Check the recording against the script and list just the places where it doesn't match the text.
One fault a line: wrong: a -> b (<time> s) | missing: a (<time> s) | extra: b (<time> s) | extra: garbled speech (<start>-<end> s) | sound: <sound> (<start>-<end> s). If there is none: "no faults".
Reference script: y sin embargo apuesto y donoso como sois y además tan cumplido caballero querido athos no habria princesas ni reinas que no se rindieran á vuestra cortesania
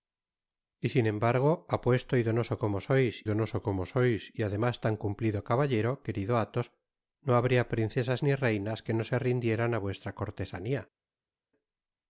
extra: donoso como sois (3.2 s)